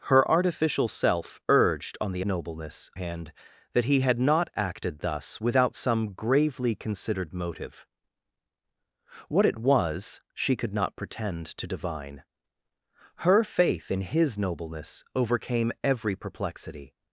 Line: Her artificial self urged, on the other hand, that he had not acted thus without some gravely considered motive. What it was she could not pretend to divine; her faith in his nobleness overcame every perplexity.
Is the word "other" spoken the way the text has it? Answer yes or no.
no